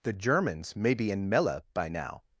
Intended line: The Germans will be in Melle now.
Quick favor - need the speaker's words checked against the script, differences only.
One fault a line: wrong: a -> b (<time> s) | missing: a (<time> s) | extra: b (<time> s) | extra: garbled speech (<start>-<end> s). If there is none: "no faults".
wrong: will -> may (0.8 s)
extra: by (1.8 s)